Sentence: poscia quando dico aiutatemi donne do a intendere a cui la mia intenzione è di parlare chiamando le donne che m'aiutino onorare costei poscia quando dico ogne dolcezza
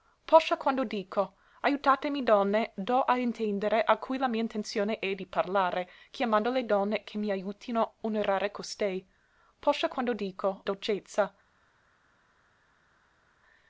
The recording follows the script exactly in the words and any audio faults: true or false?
false